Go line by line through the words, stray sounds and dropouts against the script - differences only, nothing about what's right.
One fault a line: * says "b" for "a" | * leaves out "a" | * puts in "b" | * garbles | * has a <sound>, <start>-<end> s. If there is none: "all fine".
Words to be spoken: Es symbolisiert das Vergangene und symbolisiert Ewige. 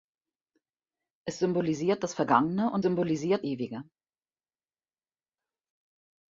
all fine